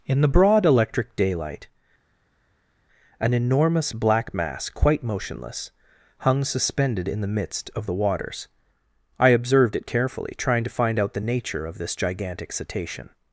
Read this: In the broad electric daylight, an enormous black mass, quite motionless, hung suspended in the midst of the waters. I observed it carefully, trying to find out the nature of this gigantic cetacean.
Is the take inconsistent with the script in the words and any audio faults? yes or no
no